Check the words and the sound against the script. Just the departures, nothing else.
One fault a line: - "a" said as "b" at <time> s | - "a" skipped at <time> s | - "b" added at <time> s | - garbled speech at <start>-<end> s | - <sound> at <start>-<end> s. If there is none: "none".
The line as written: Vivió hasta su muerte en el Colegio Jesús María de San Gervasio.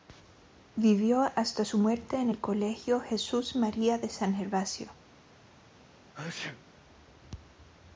- sneeze at 6.1-6.6 s